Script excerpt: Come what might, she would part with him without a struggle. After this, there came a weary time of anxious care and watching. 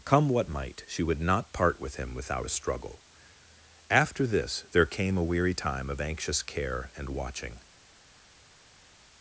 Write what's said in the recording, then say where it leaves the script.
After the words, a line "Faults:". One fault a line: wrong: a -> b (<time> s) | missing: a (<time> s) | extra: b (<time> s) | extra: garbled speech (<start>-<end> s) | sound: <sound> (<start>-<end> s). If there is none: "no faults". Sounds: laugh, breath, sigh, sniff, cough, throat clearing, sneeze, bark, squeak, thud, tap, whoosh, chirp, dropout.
Come what might, she would not part with him without a struggle. After this, there came a weary time of anxious care and watching.
Faults:
extra: not (1.2 s)